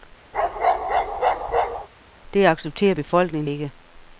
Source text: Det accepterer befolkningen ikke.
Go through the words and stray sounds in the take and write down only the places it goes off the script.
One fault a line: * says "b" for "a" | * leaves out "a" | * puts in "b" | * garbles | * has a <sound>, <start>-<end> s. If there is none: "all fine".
* has a bark, 0.3-1.9 s